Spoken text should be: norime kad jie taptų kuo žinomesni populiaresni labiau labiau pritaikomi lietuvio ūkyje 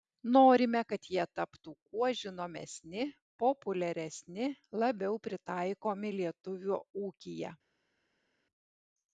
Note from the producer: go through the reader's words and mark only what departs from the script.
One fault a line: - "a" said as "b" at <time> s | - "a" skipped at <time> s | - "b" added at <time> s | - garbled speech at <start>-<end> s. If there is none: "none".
- "labiau" skipped at 5.2 s